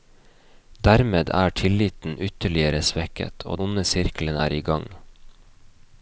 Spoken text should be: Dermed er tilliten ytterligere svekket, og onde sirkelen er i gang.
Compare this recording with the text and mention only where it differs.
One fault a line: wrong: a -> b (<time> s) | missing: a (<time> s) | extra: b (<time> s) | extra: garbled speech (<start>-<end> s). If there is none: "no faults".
no faults